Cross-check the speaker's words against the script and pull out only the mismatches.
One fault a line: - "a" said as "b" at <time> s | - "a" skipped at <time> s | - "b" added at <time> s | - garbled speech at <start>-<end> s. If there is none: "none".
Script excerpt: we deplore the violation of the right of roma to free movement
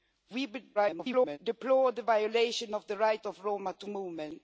- garbled speech at 0.7-1.4 s
- "free" skipped at 3.9 s